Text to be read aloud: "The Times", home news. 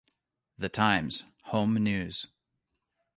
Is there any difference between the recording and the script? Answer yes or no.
no